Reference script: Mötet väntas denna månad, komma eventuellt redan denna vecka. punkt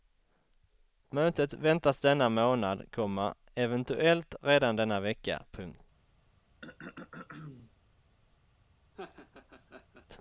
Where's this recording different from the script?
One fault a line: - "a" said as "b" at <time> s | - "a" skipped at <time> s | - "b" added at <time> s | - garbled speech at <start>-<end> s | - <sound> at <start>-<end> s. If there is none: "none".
- throat clearing at 6.6-7.7 s
- laugh at 8.9-10.1 s